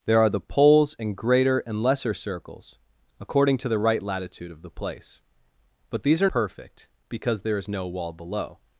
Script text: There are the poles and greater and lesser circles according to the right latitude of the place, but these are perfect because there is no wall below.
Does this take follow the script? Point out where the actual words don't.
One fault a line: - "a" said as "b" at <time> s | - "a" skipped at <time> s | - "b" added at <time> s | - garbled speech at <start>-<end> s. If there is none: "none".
none